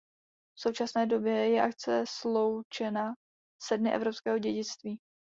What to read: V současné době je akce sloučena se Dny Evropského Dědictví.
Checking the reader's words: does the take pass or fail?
pass